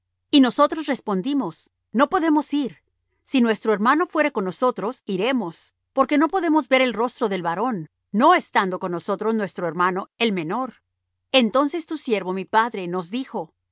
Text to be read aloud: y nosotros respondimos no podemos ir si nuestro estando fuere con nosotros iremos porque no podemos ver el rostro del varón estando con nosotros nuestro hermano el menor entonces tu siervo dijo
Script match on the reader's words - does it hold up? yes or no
no